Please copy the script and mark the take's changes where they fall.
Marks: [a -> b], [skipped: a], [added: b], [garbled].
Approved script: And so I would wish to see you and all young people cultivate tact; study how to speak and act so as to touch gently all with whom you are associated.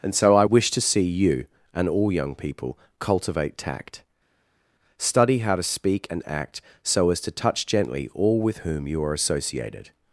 And so I [skipped: would] wish to see you and all young people cultivate tact; study how to speak and act so as to touch gently all with whom you are associated.